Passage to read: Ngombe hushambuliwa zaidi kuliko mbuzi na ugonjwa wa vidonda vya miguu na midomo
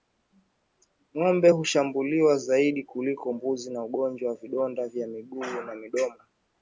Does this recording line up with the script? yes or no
yes